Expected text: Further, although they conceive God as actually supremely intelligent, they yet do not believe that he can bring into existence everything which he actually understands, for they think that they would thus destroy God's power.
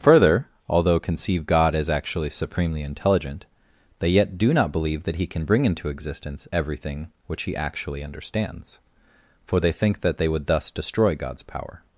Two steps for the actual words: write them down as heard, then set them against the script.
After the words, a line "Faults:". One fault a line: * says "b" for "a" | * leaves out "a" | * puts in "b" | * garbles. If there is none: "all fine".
Further, although conceive God as actually supremely intelligent, they yet do not believe that he can bring into existence everything which he actually understands, for they think that they would thus destroy God's power.
Faults:
* leaves out "they"